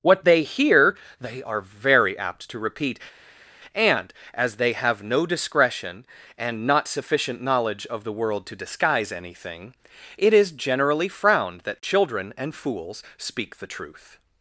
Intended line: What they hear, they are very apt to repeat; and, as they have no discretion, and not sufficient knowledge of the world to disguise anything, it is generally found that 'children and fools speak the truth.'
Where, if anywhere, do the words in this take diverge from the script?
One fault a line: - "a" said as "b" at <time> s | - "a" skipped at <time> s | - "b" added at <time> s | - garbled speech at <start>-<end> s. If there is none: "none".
- "found" said as "frowned" at 11.1 s